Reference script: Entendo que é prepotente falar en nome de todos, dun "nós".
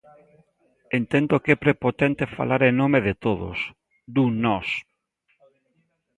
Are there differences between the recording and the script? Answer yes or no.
no